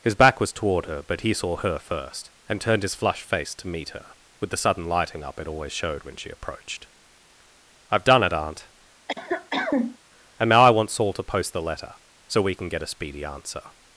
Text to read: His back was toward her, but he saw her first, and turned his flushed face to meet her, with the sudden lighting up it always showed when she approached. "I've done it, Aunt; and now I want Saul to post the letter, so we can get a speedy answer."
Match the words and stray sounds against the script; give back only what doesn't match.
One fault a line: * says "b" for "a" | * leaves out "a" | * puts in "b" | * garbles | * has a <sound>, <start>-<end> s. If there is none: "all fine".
* has a cough, 9.1-10.0 s